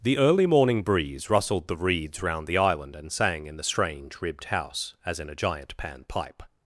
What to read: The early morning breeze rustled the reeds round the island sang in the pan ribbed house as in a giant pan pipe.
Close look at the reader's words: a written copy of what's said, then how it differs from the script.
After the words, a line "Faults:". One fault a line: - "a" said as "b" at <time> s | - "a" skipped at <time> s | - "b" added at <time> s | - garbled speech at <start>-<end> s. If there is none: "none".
The early morning breeze rustled the reeds round the island and sang in the strange ribbed house as in a giant pan pipe.
Faults:
- "and" added at 3.0 s
- "pan" said as "strange" at 3.6 s